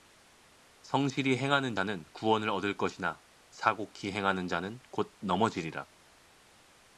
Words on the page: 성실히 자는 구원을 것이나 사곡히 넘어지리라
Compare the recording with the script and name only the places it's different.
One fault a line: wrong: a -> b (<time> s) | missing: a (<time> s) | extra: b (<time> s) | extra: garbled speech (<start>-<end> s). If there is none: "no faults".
extra: 행하는 (1.4 s)
extra: 얻을 (2.5 s)
extra: 행하는 자는 곧 (4.1 s)